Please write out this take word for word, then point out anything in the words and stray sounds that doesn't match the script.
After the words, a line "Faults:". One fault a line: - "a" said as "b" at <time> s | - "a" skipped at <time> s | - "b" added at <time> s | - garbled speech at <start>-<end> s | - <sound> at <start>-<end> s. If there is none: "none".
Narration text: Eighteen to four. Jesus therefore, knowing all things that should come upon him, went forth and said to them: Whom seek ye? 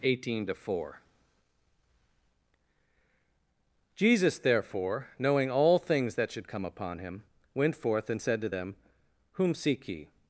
Eighteen to four. Jesus therefore, knowing all things that should come upon him, went forth and said to them: Whom seek ye?
Faults:
none